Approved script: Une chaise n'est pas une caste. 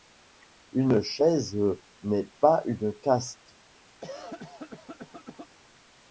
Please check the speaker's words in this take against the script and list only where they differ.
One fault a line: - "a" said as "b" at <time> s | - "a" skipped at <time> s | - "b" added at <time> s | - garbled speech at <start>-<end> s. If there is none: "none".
none